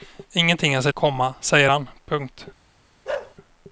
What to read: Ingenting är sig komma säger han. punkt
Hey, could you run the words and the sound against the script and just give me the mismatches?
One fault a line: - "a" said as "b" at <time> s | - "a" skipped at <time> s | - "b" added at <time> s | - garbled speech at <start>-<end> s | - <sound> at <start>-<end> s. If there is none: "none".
- bark at 3.0-3.3 s